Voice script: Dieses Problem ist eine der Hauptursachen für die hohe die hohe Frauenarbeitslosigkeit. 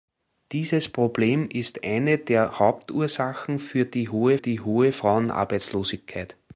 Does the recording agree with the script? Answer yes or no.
yes